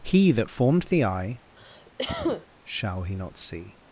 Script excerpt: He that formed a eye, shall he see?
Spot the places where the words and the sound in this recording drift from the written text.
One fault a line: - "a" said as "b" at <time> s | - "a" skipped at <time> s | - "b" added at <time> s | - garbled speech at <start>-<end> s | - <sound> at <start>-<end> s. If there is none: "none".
- "a" said as "the" at 0.8 s
- cough at 1.6-2.5 s
- "not" added at 3.2 s